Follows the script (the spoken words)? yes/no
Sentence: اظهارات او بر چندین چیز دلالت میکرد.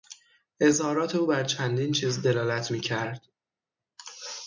yes